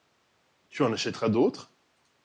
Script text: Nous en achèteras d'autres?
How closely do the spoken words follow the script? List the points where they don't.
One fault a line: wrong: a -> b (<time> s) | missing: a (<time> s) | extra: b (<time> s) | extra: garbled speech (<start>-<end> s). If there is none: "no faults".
wrong: Nous -> Tu (0.7 s)